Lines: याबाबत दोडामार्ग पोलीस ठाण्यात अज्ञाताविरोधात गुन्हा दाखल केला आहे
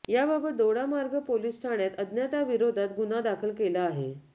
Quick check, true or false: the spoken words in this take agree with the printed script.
true